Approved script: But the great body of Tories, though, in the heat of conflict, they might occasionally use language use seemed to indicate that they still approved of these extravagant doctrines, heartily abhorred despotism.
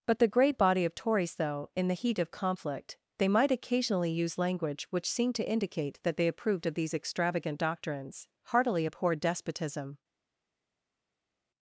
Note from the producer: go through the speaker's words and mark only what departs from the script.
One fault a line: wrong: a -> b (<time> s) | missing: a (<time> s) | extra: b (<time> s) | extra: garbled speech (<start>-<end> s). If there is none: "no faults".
wrong: use -> which (4.9 s)
missing: still (6.3 s)